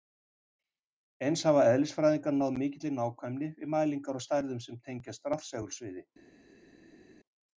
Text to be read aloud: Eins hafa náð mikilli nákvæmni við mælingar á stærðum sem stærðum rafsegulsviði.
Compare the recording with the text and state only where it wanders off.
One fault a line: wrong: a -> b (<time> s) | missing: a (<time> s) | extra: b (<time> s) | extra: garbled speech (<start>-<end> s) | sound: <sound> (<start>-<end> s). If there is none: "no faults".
extra: eðlisfræðingar (1.7 s)
wrong: stærðum -> tengjast (4.9 s)